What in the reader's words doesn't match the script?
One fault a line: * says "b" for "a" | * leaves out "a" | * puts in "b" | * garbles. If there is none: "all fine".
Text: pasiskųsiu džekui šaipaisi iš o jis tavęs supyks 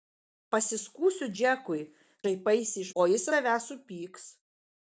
all fine